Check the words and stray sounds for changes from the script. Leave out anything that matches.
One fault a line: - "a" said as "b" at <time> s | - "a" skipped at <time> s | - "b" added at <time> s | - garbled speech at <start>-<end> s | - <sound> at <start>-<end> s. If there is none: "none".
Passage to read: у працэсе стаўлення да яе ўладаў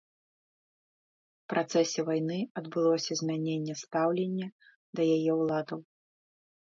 - "вайны адбылося змяненне" added at 2.1 s